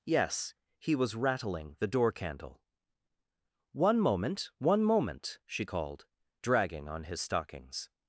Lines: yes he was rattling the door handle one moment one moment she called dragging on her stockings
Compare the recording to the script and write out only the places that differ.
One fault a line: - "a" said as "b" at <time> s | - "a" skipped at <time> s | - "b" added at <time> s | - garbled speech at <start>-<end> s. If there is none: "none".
- "handle" said as "candle" at 2.1 s
- "her" said as "his" at 7.0 s